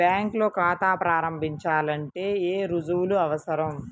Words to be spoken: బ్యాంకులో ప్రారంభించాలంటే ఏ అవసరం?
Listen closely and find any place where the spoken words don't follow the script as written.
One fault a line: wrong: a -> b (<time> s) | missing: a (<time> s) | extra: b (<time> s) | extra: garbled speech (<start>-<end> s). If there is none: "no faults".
extra: ఖాతా (0.6 s)
extra: రుజువులు (2.7 s)